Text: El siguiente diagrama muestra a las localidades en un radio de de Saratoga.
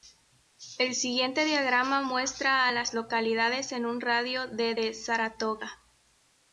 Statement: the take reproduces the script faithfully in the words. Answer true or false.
true